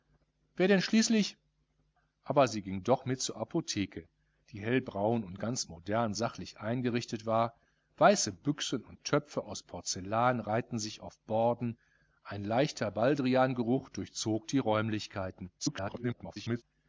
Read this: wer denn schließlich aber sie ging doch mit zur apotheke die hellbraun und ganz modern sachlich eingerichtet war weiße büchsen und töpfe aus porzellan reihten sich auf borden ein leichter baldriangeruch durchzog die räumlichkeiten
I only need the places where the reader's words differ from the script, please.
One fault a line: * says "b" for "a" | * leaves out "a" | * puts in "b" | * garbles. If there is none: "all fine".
* garbles